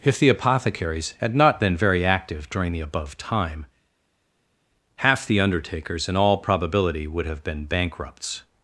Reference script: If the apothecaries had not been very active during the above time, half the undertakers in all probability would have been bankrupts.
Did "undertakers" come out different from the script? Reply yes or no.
no